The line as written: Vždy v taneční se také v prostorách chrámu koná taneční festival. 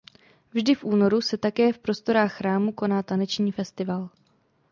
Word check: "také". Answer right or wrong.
right